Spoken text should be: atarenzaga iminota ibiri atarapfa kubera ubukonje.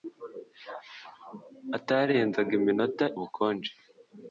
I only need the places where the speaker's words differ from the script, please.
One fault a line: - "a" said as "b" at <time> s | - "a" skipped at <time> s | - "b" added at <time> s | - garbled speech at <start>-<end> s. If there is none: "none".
- "ibiri atarapfa kubera" skipped at 3.0 s